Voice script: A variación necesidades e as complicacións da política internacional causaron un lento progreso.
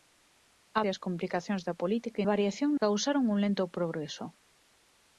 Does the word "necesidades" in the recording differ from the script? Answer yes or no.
yes